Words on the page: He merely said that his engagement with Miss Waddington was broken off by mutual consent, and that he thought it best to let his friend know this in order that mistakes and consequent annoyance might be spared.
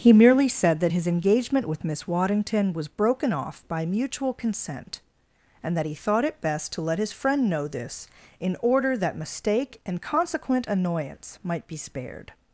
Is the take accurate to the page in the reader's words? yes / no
no